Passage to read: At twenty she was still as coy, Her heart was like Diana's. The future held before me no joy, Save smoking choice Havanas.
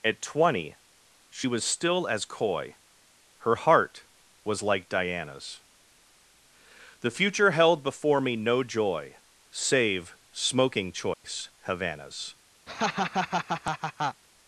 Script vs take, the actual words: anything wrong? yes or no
no